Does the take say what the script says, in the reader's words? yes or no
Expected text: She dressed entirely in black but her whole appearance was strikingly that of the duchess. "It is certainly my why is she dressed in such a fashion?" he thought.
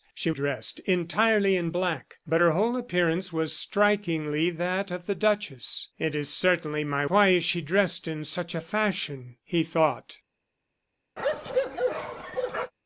yes